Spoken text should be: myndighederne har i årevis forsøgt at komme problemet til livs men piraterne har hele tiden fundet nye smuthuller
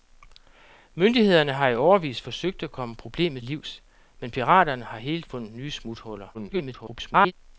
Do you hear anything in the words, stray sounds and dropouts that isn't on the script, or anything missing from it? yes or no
yes